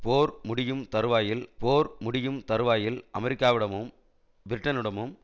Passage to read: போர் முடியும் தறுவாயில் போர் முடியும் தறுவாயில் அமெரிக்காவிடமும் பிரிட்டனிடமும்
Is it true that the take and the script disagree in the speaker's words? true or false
false